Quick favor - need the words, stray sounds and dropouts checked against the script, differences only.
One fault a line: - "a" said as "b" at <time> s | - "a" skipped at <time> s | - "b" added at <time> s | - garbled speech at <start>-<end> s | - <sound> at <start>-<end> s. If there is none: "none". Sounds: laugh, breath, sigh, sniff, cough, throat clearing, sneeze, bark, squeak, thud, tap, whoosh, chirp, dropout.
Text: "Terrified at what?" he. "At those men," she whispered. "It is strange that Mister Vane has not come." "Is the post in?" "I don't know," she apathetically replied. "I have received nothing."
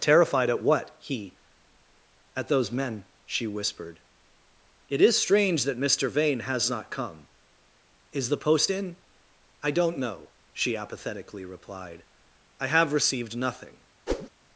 - whoosh at 14.1-14.3 s